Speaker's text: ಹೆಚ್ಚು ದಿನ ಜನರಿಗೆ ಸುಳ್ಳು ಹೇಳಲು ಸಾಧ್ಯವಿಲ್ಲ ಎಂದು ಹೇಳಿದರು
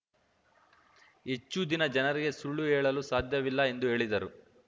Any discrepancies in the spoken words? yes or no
no